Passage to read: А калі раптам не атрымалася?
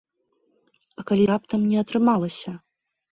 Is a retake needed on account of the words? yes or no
no